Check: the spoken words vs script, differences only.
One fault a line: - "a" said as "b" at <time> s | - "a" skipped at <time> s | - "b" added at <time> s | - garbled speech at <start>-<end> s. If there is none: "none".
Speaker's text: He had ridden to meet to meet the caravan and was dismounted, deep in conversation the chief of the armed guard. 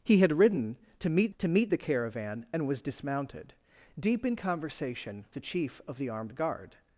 none